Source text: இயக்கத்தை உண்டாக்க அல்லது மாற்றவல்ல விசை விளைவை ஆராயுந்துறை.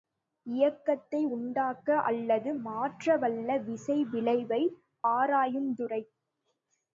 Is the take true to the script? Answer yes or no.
yes